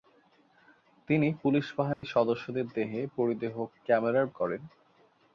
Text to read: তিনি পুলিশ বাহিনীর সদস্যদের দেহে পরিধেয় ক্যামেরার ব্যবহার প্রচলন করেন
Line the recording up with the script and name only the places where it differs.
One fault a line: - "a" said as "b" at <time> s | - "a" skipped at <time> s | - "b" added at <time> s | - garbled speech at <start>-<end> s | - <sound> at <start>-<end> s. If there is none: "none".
- dropout at 1.9-2.0 s
- "ব্যবহার প্রচলন" skipped at 4.3 s